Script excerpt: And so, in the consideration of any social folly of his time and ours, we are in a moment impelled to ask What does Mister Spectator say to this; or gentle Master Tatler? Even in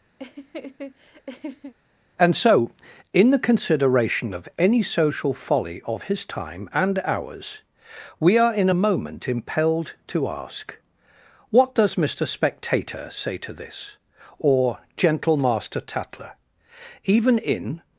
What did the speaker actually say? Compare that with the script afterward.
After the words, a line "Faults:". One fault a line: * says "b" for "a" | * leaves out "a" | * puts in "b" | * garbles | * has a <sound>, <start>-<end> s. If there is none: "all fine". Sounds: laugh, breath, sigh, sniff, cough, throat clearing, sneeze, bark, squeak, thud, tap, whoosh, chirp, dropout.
And so, in the consideration of any social folly of his time and ours, we are in a moment impelled to ask What does Mister Spectator say to this; or gentle Master Tatler? Even in
Faults:
* has a laugh, 0.2-1.7 s